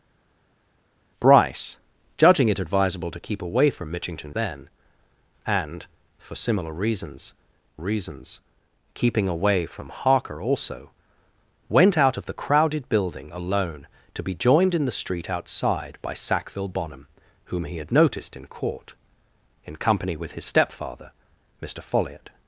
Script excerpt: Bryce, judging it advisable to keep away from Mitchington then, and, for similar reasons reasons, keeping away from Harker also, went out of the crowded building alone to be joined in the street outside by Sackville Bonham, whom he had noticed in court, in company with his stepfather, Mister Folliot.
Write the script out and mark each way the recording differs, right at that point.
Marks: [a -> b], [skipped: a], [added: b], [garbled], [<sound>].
Bryce, judging it advisable to keep away from Mitchington then, and, for similar reasons reasons, keeping away from Harker also, went out of the crowded building alone to be joined in the street outside by Sackville Bonham, whom he had noticed in court, in company with his stepfather, Mister Folliot.